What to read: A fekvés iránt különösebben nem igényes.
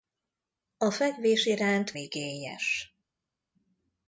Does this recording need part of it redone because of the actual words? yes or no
yes